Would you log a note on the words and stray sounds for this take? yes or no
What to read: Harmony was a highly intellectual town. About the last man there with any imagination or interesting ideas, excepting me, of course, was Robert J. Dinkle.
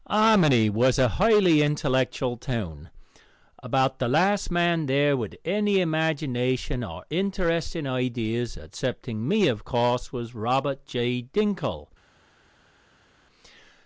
no